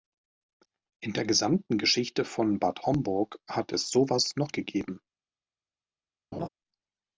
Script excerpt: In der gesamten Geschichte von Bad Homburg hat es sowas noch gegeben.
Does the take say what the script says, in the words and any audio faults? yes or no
no